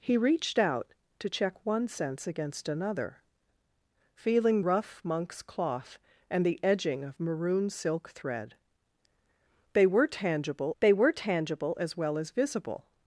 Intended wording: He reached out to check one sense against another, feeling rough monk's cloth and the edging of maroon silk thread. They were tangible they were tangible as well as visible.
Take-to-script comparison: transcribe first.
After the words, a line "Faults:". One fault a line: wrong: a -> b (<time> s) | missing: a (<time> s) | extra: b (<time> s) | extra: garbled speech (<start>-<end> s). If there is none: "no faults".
He reached out to check one sense against another, feeling rough monk's cloth and the edging of maroon silk thread. They were tangible they were tangible as well as visible.
Faults:
no faults